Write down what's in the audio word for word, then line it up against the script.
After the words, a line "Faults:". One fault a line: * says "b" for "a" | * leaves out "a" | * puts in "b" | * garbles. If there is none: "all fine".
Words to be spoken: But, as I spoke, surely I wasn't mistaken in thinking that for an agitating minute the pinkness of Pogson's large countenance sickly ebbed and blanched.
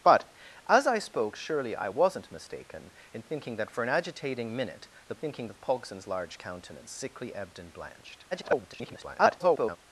But, as I spoke, surely I wasn't mistaken in thinking that for an agitating minute the thinking of Pogson's large countenance sickly ebbed and blanched. [garbled]
Faults:
* says "thinking" for "pinkness"
* garbles